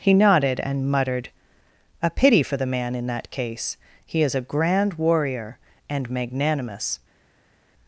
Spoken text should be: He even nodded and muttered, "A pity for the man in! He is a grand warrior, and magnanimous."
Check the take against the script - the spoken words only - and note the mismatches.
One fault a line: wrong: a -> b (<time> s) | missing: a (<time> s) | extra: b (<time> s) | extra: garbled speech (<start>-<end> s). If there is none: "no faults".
missing: even (0.1 s)
extra: that case (3.0 s)